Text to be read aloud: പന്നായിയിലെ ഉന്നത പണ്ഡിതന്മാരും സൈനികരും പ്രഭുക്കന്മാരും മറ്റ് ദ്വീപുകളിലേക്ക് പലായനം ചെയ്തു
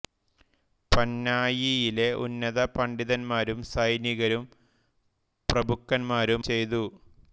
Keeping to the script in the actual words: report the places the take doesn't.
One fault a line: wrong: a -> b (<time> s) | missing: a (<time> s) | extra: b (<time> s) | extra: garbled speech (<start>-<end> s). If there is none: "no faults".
missing: മറ്റ് ദ്വീപുകളിലേക്ക് പലായനം (6.4 s)